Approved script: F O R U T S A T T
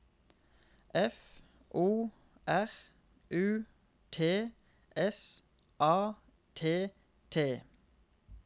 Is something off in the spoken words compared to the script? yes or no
no